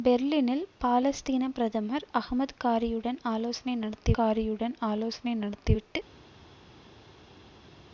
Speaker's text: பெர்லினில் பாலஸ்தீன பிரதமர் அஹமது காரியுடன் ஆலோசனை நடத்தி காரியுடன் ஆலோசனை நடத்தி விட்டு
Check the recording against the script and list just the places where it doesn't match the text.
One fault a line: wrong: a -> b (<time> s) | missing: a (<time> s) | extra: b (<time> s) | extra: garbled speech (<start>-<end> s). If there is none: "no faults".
no faults